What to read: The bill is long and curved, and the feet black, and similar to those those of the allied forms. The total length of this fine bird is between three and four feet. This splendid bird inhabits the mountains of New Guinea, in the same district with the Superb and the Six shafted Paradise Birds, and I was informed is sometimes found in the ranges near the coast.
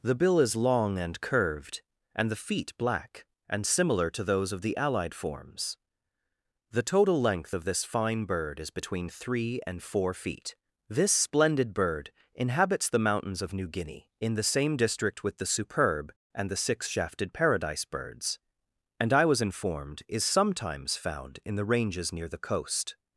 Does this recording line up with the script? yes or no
no